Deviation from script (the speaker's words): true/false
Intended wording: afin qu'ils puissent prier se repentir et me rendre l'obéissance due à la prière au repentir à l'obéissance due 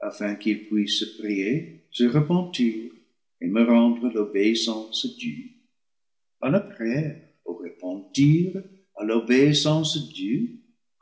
false